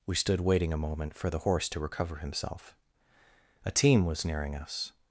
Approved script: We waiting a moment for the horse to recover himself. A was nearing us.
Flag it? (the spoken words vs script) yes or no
yes